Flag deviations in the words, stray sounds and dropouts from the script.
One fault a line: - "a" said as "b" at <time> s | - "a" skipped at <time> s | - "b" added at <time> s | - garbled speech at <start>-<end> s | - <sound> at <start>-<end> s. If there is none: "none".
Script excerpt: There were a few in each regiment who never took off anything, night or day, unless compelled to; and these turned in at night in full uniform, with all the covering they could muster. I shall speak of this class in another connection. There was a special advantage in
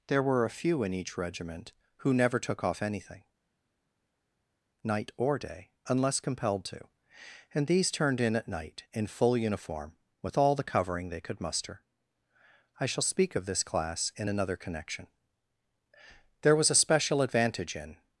none